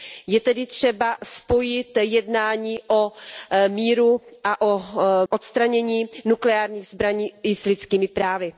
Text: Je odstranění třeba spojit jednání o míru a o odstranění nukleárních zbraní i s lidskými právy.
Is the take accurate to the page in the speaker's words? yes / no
no